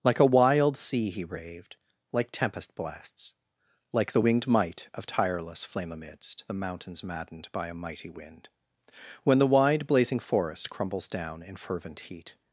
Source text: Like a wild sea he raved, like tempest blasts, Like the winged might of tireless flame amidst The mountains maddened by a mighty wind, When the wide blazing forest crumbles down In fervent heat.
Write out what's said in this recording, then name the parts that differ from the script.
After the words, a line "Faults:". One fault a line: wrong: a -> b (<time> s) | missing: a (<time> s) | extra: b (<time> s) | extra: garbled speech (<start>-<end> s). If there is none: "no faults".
Like a wild sea he raved, like tempest blasts, Like the winged might of tireless flame amidst The mountains maddened by a mighty wind, When the wide blazing forest crumbles down In fervent heat.
Faults:
no faults